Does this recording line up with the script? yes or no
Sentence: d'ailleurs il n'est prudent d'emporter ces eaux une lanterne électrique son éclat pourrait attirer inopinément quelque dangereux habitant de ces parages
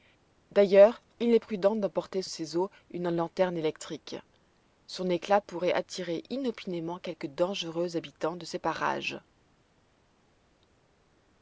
yes